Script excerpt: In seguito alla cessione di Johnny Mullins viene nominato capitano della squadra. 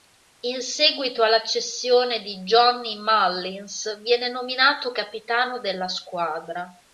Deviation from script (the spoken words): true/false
false